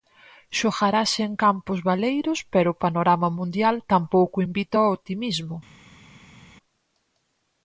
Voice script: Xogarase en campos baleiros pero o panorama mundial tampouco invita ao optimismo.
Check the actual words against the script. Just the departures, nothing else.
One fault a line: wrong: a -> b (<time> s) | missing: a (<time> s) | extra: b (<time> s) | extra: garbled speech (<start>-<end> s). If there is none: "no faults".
no faults